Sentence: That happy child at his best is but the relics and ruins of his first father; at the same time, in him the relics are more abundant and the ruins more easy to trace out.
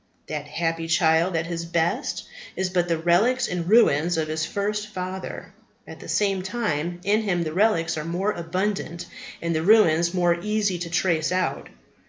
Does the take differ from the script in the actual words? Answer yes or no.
no